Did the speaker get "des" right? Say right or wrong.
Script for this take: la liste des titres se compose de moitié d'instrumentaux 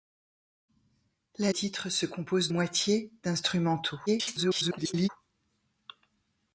wrong